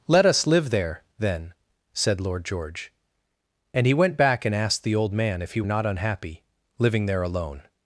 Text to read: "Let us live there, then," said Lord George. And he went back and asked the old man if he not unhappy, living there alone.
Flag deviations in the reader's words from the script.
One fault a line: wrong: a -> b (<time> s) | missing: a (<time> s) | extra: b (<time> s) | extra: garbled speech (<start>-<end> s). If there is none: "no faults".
no faults